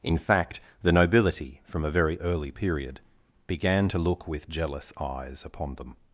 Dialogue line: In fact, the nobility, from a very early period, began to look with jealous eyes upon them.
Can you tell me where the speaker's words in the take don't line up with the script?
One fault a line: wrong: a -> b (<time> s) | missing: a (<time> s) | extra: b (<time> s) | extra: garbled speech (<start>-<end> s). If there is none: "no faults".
no faults